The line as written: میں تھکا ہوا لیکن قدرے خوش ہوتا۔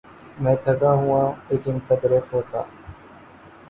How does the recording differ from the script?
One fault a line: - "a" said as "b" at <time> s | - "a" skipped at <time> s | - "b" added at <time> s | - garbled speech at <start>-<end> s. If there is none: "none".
- "خوش" skipped at 2.2 s